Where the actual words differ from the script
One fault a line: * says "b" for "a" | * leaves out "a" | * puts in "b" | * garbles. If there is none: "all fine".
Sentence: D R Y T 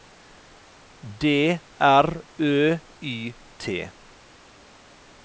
* puts in "Ø"